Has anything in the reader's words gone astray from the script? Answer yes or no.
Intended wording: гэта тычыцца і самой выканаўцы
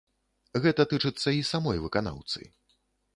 no